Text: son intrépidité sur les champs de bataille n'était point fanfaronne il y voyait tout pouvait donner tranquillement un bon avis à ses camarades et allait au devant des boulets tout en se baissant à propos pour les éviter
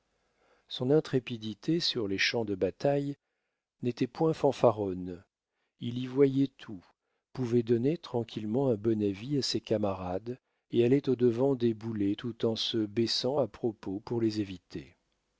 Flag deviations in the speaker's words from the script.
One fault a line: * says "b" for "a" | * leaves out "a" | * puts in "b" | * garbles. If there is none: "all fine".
all fine